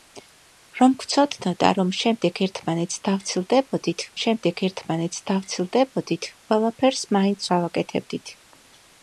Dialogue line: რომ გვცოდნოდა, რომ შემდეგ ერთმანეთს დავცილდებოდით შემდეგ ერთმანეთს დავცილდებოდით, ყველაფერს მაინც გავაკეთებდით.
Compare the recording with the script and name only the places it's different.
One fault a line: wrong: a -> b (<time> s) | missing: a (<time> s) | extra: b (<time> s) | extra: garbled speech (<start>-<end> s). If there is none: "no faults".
no faults